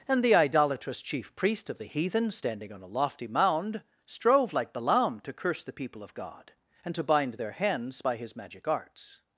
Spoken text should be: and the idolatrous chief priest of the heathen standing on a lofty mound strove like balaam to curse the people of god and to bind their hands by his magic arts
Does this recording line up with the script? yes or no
yes